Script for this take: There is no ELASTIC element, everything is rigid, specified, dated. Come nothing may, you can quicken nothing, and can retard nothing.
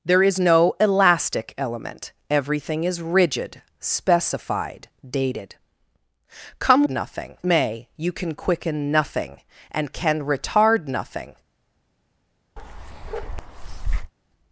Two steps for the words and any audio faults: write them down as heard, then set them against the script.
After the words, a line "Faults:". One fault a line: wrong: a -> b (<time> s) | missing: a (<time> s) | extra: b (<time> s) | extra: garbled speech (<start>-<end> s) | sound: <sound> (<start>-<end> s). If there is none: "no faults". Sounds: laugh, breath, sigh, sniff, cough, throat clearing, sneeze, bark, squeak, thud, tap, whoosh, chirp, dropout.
There is no ELASTIC element, everything is rigid, specified, dated. Come nothing may, you can quicken nothing, and can retard nothing.
Faults:
sound: bark (12.6-14.1 s)